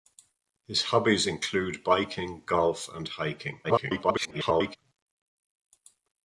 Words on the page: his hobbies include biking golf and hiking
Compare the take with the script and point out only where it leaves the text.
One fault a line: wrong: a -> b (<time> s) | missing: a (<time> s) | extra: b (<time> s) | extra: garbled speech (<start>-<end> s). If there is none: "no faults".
extra: garbled speech (3.6-4.8 s)